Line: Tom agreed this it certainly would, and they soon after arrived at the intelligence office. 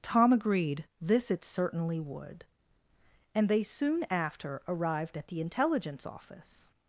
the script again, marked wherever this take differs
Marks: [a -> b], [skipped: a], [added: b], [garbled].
Tom agreed this it certainly would, and they soon after arrived at the intelligence office.